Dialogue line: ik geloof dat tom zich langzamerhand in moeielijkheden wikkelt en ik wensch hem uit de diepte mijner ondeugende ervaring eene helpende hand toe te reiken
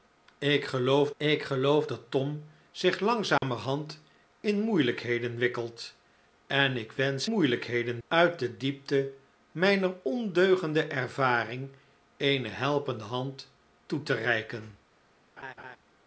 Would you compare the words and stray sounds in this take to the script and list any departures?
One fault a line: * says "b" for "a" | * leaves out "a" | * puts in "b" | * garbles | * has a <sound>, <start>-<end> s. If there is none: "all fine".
* puts in "ik geloof"
* has a dropout, 3.4-3.4 s
* says "moeielijkheden" for "hem"
* has a laugh, 15.4-15.8 s